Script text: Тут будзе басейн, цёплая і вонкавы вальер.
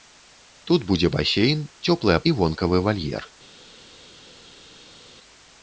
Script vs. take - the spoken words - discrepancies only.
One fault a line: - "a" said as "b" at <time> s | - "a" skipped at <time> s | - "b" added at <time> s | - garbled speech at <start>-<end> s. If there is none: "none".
none